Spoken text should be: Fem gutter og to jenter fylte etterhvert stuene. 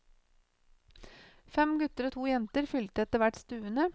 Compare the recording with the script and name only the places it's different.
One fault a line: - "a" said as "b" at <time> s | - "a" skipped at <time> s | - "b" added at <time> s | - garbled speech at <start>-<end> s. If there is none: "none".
none